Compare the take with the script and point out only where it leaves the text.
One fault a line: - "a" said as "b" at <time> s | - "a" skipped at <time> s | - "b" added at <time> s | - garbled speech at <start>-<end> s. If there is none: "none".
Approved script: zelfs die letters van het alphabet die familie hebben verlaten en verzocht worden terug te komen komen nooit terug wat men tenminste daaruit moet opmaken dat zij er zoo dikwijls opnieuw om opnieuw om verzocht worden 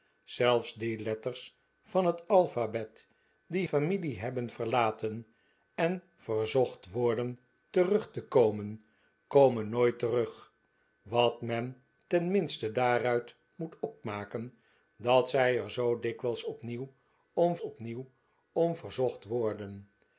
none